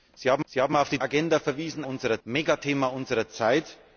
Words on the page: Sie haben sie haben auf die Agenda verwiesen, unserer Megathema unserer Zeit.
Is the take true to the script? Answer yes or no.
yes